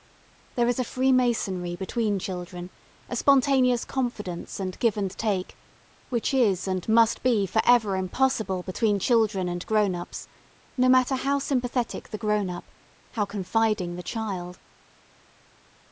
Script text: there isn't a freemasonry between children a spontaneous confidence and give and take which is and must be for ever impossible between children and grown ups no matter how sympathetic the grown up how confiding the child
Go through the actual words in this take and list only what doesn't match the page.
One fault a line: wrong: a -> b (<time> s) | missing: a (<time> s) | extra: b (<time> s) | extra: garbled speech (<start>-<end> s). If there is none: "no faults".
wrong: isn't -> is (0.7 s)